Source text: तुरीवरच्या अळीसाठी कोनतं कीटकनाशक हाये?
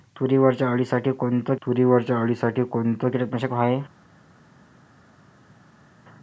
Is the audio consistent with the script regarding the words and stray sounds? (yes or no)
no